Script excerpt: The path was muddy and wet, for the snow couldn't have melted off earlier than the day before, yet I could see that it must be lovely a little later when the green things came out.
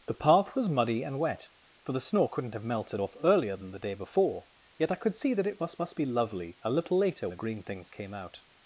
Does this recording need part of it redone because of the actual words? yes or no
yes